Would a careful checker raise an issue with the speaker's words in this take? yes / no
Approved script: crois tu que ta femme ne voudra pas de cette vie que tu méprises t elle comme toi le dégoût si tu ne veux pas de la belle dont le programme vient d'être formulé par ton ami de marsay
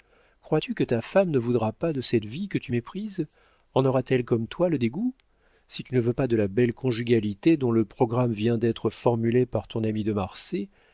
yes